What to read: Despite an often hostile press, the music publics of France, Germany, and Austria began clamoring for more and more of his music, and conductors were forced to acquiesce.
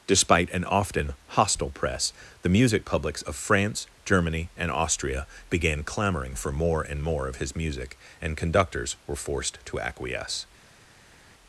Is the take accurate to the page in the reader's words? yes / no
yes